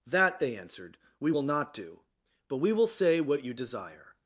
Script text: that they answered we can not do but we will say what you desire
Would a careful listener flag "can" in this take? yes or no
yes